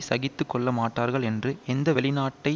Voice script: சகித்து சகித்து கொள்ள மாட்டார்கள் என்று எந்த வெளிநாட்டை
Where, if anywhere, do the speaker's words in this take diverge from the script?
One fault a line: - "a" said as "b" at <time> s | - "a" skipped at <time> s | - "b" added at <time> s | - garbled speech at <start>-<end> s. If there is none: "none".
- "சகித்து" skipped at 0.5 s